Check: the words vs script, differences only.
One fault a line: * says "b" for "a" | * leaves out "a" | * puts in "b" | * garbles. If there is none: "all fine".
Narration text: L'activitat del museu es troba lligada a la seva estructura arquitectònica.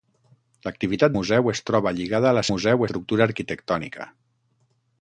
* leaves out "del"
* says "museu" for "seva"